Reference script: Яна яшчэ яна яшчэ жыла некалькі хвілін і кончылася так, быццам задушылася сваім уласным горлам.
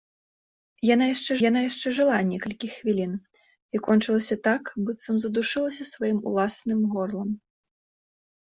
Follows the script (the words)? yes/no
yes